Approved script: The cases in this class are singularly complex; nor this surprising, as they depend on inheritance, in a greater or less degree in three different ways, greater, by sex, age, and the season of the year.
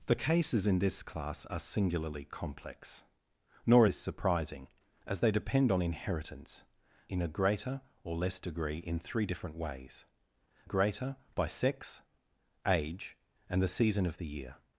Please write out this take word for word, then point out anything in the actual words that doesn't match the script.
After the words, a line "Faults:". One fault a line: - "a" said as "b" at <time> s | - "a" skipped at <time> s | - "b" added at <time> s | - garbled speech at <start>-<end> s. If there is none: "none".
The cases in this class are singularly complex; nor this surprising, as they depend on inheritance, in a greater or less degree in three different ways, greater, by sex, age, and the season of the year.
Faults:
none